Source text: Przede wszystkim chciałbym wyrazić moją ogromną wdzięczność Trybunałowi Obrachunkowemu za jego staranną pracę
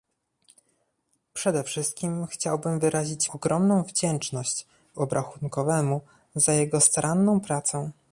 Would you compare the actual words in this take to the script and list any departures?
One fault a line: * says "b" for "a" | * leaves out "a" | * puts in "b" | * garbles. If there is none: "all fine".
* leaves out "moją"
* leaves out "Trybunałowi"